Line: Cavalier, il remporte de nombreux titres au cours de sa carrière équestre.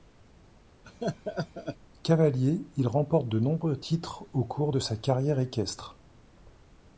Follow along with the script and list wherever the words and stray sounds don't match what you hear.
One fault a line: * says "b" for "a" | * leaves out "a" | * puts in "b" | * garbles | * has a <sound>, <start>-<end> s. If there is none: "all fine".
* has a laugh, 0.8-1.8 s